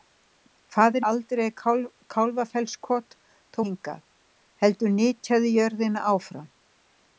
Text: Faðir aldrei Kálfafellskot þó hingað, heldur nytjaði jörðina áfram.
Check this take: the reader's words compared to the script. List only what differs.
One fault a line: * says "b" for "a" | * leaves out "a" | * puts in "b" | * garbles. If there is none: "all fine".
all fine